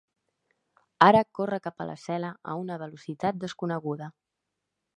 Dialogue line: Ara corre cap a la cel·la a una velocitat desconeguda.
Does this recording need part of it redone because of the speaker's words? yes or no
no